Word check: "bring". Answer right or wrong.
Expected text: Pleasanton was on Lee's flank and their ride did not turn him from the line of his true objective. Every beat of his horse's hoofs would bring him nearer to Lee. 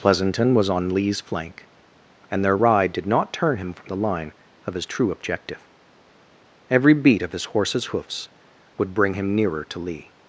right